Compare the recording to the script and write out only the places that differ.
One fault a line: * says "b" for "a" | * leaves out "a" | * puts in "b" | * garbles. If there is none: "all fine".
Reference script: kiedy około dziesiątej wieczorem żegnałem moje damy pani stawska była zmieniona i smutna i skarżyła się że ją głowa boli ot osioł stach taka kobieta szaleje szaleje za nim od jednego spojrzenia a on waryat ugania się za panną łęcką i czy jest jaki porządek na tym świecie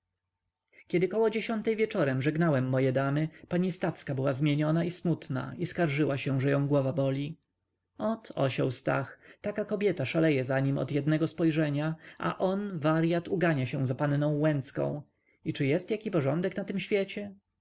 * leaves out "szaleje"